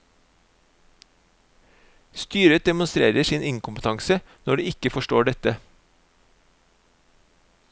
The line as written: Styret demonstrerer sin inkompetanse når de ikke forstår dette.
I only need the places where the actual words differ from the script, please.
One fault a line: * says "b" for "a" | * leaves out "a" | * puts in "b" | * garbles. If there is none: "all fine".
all fine